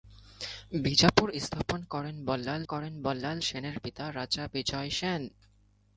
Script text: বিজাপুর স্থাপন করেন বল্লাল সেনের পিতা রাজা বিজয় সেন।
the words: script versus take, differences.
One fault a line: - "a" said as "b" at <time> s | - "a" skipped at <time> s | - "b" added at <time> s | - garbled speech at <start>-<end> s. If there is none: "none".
- "করেন বল্লাল" added at 2.6 s